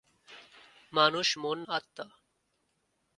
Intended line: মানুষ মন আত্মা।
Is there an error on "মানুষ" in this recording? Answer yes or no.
no